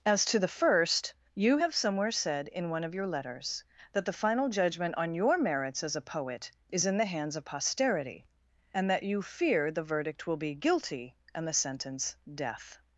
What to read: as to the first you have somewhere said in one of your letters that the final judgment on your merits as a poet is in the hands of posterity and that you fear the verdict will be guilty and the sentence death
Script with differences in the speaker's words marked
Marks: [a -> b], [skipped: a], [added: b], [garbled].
as to the first you have somewhere said in one of your letters that the final judgment on your merits as a poet is in the hands of posterity and that you fear the verdict will be guilty and the sentence death